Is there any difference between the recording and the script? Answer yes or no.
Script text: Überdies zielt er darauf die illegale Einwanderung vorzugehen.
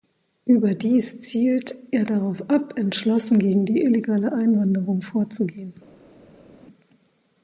yes